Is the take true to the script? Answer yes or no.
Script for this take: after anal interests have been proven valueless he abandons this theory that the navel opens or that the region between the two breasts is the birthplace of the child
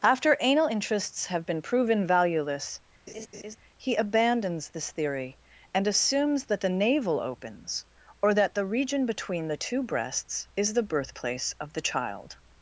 no